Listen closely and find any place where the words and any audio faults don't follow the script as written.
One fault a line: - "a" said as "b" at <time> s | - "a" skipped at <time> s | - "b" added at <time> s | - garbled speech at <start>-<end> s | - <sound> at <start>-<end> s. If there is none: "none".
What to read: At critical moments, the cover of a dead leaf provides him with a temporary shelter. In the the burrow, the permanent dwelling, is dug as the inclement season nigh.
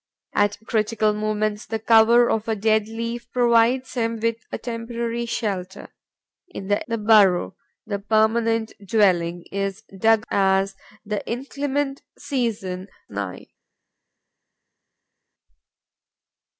none